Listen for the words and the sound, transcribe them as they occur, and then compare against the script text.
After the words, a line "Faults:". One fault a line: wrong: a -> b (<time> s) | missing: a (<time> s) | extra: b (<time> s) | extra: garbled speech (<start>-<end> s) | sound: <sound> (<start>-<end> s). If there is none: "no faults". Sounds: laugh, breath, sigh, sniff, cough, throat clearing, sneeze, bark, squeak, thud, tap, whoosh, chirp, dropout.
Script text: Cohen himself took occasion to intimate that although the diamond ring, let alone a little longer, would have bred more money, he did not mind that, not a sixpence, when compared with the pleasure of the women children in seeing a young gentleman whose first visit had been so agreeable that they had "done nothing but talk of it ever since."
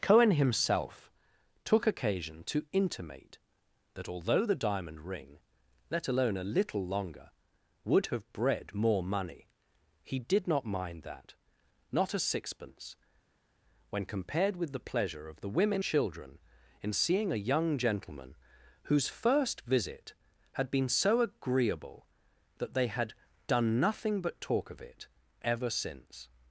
Cohen himself took occasion to intimate that although the diamond ring, let alone a little longer, would have bred more money, he did not mind that, not a sixpence, when compared with the pleasure of the women children in seeing a young gentleman whose first visit had been so agreeable that they had "done nothing but talk of it ever since."
Faults:
no faults